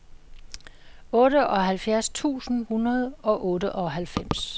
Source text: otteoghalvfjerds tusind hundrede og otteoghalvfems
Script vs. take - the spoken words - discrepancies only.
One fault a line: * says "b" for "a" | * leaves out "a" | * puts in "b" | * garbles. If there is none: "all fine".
all fine